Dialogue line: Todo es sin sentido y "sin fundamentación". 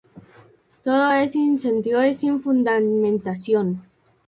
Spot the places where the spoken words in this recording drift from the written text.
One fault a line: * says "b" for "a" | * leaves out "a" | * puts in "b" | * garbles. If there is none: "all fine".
all fine